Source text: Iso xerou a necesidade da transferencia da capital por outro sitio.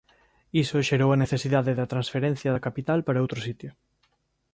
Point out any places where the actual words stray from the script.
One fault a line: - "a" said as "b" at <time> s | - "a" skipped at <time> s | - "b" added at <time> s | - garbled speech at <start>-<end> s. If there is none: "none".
- "por" said as "para" at 3.1 s